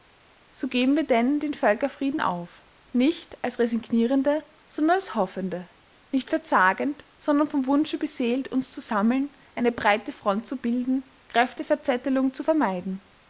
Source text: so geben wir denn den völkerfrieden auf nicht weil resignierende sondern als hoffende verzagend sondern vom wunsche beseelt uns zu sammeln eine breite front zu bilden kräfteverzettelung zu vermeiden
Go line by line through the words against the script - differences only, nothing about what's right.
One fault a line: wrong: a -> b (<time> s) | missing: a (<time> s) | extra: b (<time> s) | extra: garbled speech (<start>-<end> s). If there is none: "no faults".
wrong: weil -> als (3.4 s)
extra: nicht (6.1 s)